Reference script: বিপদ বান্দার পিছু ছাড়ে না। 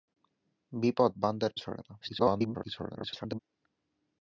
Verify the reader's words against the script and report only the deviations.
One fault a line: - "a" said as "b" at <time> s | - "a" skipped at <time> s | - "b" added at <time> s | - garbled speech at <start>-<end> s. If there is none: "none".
- "পিছু" skipped at 1.5 s
- garbled speech at 2.0-3.4 s